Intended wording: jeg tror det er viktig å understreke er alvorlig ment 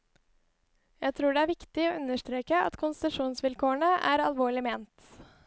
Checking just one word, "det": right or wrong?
right